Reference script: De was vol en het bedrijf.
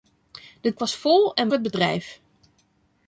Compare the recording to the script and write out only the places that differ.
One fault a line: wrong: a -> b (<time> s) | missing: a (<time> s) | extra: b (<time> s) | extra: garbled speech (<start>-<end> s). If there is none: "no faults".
no faults